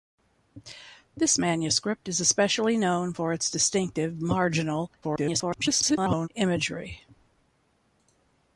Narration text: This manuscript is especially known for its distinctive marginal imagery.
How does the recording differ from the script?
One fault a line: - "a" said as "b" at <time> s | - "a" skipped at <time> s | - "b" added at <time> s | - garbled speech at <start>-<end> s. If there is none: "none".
- garbled speech at 5.0-6.3 s